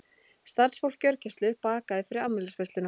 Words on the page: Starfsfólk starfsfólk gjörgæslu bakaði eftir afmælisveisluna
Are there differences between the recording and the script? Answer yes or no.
yes